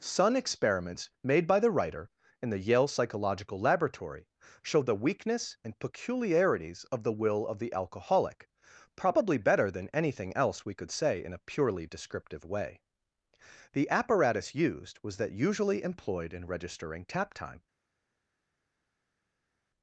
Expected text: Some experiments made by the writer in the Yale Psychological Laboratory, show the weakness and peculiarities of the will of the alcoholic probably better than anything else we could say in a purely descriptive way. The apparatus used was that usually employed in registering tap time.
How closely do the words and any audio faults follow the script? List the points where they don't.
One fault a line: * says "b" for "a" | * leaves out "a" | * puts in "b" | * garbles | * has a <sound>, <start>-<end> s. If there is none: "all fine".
* says "Sun" for "Some"